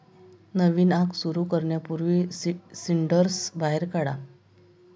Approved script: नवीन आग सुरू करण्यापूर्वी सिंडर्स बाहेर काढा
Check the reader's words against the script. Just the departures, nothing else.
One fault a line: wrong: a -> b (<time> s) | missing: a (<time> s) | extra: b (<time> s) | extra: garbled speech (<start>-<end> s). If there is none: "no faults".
no faults